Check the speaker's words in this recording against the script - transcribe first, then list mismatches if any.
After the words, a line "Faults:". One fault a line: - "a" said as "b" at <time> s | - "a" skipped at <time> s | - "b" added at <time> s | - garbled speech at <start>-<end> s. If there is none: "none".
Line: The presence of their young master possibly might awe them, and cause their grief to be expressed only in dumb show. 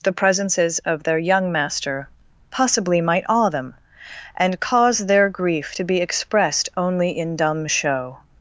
The presences of their young master possibly might awe them, and cause their grief to be expressed only in dumb show.
Faults:
- "presence" said as "presences" at 0.1 s